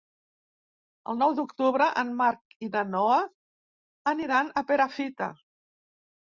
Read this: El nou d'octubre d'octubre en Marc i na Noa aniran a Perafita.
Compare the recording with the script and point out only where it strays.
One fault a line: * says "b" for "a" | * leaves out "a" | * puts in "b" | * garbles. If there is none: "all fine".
* leaves out "d'octubre"